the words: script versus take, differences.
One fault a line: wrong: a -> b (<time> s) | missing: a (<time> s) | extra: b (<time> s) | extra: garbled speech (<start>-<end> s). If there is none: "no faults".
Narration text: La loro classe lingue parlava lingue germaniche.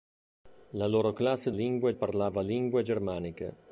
no faults